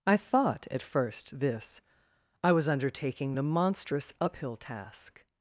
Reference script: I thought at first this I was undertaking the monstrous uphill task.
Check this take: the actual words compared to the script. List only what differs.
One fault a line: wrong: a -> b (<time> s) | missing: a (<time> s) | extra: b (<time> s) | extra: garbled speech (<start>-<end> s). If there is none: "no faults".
no faults